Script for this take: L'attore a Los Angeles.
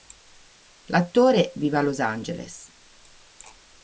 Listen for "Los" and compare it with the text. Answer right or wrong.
right